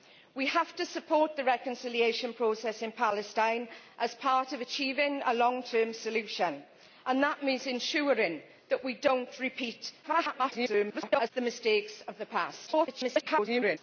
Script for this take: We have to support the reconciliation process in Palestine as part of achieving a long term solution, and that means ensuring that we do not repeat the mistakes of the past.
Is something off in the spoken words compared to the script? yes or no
yes